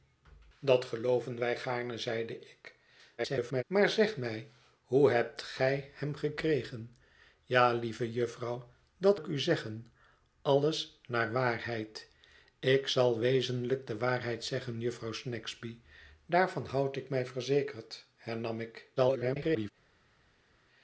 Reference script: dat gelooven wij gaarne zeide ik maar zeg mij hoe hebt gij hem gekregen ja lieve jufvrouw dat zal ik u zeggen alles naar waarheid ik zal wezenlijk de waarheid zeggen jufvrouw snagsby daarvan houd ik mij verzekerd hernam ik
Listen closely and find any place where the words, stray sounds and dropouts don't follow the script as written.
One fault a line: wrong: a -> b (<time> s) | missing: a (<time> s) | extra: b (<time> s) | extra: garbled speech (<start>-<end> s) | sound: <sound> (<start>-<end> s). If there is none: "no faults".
extra: garbled speech (3.2-3.6 s)
missing: zal (9.2 s)
extra: garbled speech (19.0-19.7 s)